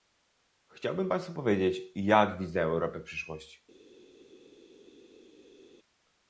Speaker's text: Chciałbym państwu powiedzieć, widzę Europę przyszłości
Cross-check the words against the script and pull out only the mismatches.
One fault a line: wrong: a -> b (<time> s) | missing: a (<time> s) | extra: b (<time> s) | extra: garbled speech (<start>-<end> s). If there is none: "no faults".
extra: jak (2.0 s)